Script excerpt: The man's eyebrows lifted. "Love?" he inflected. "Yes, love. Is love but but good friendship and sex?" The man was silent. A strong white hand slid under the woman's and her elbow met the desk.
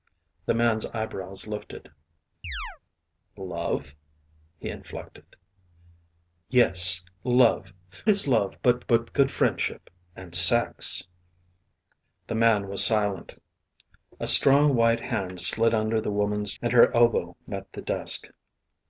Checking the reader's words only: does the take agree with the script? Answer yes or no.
yes